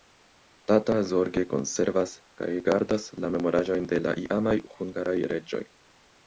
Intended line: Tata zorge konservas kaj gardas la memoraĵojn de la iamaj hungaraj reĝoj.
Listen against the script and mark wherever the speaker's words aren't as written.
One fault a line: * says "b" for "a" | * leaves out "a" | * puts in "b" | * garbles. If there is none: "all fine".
all fine